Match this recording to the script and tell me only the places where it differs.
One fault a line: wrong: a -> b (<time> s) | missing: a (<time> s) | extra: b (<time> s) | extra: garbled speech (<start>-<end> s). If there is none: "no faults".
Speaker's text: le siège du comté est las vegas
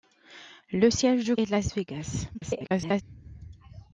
missing: comté (1.4 s)
extra: garbled speech (2.3-3.0 s)